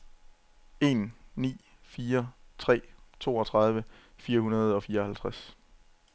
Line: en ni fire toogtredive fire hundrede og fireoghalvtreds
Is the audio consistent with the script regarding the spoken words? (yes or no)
no